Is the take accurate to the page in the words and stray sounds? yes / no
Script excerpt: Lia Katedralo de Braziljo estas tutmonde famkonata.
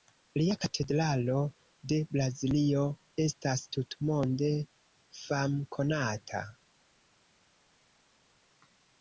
yes